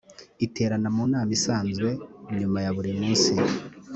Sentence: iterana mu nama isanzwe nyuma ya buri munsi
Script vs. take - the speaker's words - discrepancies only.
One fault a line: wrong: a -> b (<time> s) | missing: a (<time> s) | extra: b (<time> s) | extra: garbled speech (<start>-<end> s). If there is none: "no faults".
no faults